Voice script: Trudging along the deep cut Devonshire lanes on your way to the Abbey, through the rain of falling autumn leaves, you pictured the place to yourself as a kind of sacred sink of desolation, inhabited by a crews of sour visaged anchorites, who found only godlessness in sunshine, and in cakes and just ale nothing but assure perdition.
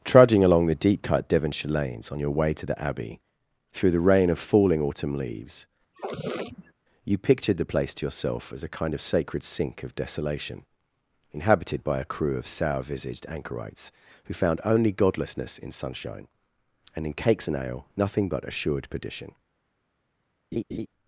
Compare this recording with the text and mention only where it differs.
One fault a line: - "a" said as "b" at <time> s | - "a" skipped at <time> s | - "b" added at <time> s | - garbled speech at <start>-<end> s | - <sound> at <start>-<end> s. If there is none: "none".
- sniff at 5.9-6.7 s
- "crews" said as "crew" at 12.0 s
- "just" skipped at 17.6 s
- "assure" said as "assured" at 18.5 s
- laugh at 20.5-20.9 s